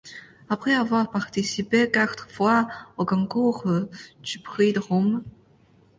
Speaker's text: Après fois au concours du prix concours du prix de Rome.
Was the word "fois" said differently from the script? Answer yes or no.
yes